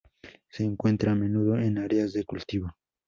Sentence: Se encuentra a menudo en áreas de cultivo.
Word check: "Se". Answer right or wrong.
right